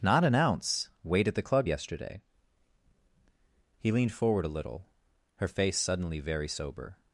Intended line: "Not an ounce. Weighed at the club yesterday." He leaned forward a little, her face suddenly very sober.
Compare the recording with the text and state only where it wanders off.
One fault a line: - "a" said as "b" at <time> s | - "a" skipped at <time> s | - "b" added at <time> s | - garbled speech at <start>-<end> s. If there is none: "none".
none